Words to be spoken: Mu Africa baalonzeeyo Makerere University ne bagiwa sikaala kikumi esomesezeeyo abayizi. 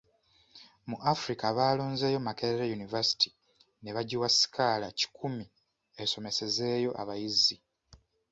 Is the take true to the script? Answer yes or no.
yes